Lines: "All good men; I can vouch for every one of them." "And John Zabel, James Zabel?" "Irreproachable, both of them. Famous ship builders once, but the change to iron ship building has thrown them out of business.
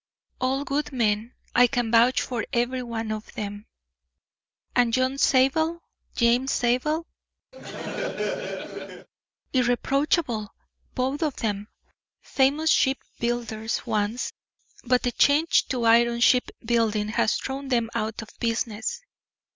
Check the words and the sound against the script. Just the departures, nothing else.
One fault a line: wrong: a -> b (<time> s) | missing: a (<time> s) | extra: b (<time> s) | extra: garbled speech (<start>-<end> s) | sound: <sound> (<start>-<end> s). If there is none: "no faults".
sound: laugh (7.5-9.1 s)